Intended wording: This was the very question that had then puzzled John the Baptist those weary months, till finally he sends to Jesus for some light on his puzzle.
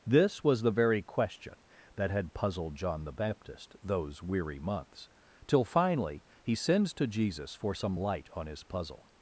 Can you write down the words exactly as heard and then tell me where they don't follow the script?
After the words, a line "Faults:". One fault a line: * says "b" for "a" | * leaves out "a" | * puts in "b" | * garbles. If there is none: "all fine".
This was the very question that had puzzled John the Baptist those weary months, till finally he sends to Jesus for some light on his puzzle.
Faults:
* leaves out "then"